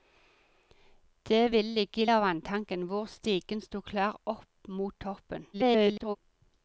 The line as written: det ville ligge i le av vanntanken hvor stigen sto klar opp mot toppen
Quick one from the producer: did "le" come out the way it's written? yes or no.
no